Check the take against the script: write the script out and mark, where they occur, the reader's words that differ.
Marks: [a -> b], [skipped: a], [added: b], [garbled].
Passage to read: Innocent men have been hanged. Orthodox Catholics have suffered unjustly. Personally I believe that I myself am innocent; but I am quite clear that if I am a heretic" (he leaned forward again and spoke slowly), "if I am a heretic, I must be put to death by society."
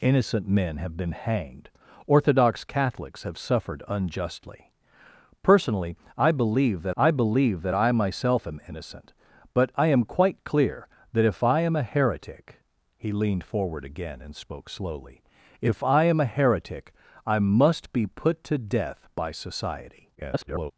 Innocent men have been hanged. Orthodox Catholics have suffered unjustly. Personally I believe that I [added: believe that I] myself am innocent; but I am quite clear that if I am a heretic" (he leaned forward again and spoke slowly), "if I am a heretic, I must be put to death by society." [garbled]